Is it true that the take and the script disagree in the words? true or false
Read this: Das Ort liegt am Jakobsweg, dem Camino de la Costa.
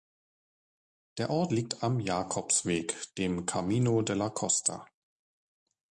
true